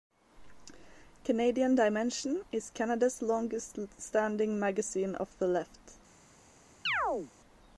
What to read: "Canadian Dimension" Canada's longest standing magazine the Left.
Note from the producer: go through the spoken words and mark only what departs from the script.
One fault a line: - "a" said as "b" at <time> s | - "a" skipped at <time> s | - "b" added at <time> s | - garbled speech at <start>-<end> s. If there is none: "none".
- "is" added at 2.5 s
- "of" added at 5.2 s